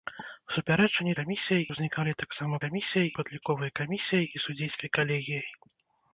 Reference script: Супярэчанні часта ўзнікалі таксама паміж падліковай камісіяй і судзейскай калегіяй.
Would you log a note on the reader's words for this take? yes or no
yes